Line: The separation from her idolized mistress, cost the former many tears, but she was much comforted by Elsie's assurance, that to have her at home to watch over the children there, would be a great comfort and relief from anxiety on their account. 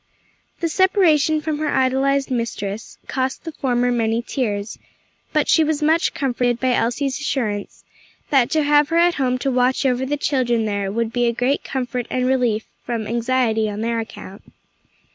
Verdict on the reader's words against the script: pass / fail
pass